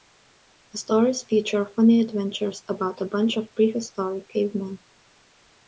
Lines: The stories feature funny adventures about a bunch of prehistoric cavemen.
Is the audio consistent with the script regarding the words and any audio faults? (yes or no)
yes